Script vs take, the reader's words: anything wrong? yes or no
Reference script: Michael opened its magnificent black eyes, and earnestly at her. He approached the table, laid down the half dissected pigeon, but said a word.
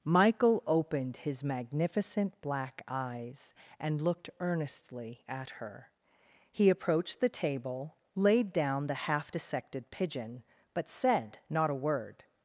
yes